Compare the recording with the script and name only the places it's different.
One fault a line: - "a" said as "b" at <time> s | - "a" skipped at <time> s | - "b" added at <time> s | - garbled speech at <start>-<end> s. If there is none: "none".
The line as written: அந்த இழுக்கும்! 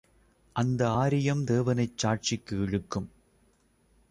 - "ஆரியம் தேவனைச் சாட்சிக்கு" added at 1.0 s